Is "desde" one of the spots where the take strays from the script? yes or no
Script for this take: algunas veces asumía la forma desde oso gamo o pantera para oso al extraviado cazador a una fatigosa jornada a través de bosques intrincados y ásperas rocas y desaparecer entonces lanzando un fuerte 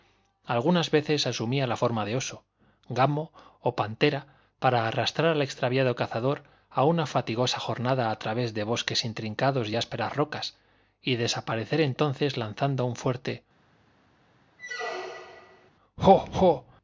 yes